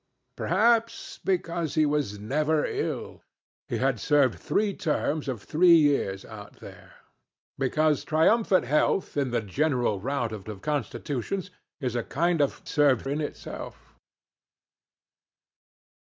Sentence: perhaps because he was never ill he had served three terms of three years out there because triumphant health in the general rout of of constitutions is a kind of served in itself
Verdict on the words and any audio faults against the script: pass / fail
pass